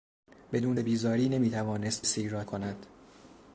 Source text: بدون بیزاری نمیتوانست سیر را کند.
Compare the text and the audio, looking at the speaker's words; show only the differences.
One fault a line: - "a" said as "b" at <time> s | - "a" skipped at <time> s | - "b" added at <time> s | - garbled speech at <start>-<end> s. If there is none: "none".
none